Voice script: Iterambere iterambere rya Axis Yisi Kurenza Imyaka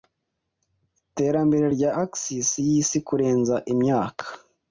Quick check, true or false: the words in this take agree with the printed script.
false